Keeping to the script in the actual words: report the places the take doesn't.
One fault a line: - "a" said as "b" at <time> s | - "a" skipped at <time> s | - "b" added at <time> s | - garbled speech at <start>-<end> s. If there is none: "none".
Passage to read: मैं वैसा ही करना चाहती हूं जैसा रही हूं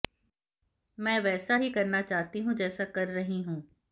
- "कर" added at 2.8 s